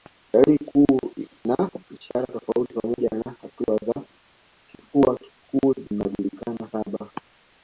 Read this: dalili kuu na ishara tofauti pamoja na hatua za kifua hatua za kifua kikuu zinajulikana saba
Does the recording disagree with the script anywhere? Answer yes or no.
yes